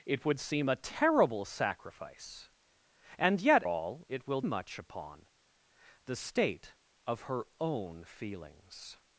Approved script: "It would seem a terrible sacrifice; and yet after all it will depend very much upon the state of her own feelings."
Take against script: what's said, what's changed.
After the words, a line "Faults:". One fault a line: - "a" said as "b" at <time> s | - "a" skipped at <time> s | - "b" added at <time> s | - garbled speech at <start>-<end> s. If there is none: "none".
"It would seem a terrible sacrifice; and yet all it will much upon the state of her own feelings."
Faults:
- "after" skipped at 3.6 s
- "depend very" skipped at 4.4 s